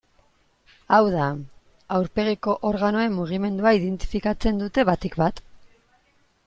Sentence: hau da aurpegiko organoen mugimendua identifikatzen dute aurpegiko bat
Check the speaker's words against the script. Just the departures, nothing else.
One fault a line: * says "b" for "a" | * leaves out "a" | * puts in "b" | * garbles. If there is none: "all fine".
* says "batik" for "aurpegiko"